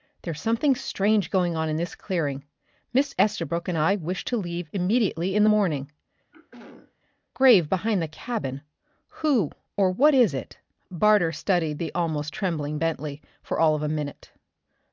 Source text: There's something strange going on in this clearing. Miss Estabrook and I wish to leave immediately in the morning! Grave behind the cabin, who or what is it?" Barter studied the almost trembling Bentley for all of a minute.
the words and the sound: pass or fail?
fail